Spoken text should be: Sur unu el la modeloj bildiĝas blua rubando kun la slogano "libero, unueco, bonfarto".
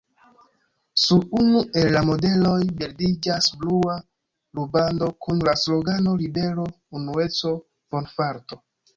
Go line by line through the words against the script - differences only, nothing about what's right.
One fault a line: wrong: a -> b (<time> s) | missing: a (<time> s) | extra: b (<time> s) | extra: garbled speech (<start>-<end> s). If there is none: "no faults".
no faults